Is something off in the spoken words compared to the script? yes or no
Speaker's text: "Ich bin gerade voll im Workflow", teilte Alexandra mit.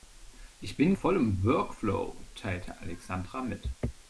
yes